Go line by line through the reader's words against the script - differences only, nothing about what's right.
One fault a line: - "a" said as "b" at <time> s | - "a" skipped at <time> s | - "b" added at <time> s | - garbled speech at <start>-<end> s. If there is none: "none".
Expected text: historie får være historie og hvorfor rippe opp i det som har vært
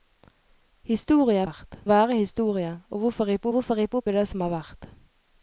- "får" said as "vært" at 1.4 s
- "hvorfor rippe" added at 3.5 s